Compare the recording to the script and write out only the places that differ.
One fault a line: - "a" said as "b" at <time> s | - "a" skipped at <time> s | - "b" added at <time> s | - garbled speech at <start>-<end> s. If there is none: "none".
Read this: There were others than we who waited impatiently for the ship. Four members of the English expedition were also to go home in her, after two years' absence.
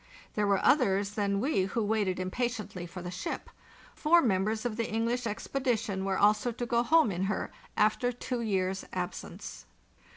none